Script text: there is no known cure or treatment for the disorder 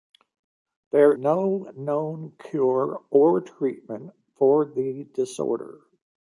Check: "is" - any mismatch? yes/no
yes